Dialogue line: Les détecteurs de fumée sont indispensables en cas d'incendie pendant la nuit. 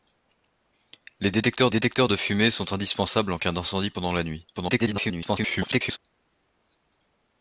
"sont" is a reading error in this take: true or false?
false